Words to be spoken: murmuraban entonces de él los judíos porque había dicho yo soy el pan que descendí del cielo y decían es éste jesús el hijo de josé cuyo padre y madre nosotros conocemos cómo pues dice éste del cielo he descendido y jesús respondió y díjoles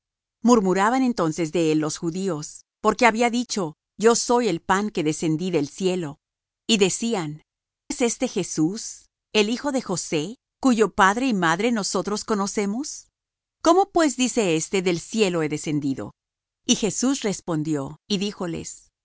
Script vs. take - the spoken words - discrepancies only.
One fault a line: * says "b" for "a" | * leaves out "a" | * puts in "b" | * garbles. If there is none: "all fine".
all fine